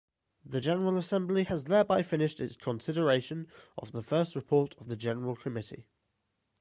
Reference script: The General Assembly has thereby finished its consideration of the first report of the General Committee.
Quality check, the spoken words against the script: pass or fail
pass